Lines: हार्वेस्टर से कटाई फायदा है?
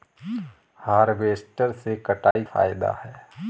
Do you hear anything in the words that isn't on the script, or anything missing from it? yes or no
no